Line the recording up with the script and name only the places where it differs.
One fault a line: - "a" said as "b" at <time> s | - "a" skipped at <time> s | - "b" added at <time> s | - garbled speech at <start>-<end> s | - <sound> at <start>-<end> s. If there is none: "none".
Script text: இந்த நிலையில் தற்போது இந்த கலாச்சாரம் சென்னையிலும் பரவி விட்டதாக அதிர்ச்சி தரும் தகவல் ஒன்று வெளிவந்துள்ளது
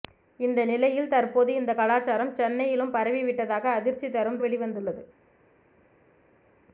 - "தகவல் ஒன்று" skipped at 4.4 s